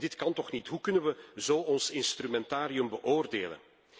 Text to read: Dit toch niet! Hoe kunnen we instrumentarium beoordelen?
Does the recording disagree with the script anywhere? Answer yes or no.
yes